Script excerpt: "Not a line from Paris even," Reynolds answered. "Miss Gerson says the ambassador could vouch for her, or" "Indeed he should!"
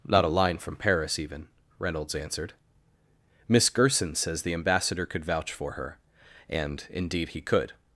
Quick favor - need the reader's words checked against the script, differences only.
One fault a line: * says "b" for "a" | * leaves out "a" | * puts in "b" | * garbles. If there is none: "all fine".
* says "and" for "or"
* says "could" for "should"